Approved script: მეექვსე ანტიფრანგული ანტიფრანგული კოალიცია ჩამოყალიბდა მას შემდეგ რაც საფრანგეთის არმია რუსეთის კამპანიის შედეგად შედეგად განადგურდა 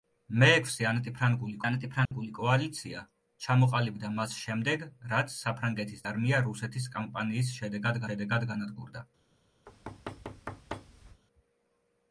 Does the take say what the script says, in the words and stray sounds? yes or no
no